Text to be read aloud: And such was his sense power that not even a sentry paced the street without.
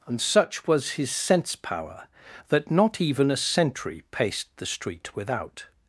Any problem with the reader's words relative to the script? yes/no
no